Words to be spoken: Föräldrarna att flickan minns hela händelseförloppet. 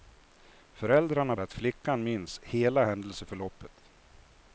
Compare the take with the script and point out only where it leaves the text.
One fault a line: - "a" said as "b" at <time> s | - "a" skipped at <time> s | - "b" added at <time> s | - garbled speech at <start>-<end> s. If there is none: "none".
none